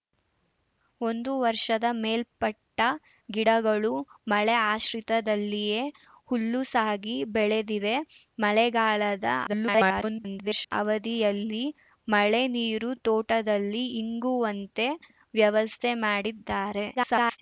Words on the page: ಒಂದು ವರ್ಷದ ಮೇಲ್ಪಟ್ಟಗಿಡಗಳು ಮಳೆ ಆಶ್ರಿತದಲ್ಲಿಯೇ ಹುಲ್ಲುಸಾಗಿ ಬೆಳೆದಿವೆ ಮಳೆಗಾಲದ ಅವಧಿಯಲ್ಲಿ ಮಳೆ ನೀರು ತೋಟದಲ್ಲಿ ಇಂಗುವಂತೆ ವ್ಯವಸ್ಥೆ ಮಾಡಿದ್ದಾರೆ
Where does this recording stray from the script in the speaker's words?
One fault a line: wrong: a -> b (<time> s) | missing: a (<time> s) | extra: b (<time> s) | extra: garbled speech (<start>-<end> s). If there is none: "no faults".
extra: garbled speech (9.5-10.7 s)
extra: garbled speech (16.9-17.4 s)